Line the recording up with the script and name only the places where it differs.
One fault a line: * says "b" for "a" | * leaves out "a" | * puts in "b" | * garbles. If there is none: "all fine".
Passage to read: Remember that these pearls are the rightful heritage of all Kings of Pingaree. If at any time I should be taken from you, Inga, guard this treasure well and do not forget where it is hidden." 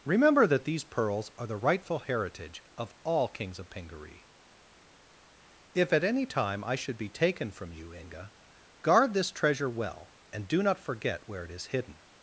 all fine